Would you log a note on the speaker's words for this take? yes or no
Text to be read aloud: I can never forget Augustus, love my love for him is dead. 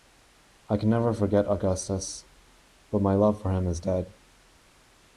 yes